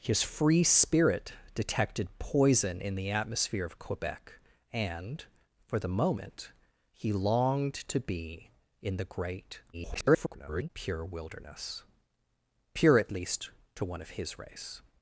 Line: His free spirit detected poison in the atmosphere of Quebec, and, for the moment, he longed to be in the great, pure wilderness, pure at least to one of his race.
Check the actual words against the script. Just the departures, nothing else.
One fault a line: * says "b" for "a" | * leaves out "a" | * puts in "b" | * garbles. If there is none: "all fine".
* garbles